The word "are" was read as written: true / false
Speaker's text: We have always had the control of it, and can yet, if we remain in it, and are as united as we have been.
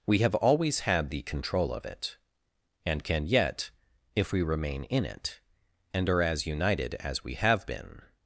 true